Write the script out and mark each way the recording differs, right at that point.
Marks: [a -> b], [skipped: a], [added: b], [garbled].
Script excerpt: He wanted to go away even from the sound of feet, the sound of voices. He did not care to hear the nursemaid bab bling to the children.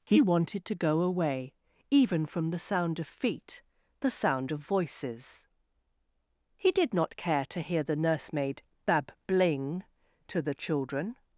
He wanted to go away even from the sound of feet, the sound of voices. He did not care to hear the nursemaid bab bling to the children.